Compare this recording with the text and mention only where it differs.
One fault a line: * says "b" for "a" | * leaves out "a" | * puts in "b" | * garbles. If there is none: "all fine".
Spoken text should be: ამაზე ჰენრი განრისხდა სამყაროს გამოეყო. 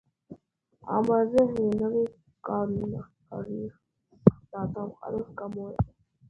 all fine